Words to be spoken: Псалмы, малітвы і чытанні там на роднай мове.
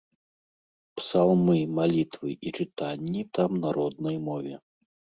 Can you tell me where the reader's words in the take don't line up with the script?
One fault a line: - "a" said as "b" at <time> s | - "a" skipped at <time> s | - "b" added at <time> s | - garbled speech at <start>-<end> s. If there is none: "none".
none